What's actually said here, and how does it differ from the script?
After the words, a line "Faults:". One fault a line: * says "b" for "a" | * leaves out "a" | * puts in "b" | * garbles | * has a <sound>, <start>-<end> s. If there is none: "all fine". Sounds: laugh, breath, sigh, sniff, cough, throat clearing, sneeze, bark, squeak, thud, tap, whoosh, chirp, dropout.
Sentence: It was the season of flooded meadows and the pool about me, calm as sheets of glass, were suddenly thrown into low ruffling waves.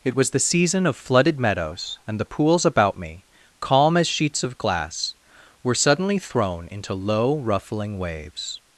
It was the season of flooded meadows and the pools about me, calm as sheets of glass, were suddenly thrown into low ruffling waves.
Faults:
* says "pools" for "pool"